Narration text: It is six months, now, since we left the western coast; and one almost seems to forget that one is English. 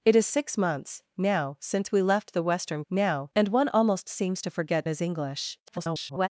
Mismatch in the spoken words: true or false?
true